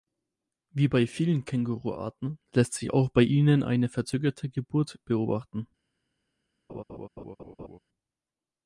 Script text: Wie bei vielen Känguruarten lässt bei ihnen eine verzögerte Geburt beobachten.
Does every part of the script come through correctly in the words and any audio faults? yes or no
no